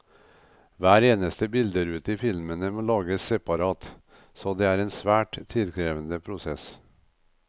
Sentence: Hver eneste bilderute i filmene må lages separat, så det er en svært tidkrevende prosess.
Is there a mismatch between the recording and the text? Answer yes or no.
no